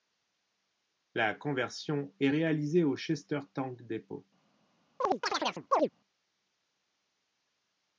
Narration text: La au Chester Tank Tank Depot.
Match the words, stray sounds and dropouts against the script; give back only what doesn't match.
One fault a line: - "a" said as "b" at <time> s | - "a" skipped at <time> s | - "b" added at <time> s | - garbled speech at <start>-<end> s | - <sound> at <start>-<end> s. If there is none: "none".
- "conversion est réalisée" added at 1.4 s
- "Tank" skipped at 3.8 s
- chirp at 5.0-5.9 s